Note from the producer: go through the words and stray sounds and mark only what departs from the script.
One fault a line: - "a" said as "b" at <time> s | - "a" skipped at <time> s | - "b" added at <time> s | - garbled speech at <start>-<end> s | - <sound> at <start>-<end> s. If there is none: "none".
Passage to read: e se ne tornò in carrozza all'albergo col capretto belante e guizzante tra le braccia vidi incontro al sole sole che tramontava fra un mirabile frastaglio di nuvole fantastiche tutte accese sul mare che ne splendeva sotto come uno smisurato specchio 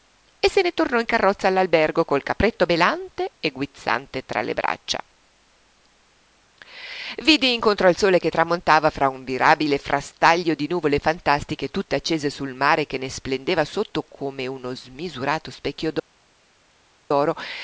- "sole" skipped at 8.2 s